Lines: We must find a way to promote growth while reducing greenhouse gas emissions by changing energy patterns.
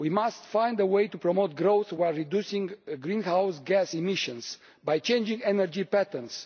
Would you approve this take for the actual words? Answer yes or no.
yes